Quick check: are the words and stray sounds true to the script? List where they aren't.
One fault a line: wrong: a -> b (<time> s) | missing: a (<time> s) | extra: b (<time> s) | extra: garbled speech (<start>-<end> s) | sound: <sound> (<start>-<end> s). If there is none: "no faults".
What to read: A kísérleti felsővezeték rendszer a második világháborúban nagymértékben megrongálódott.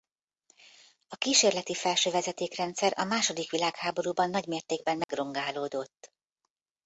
sound: dropout (5.0-5.1 s)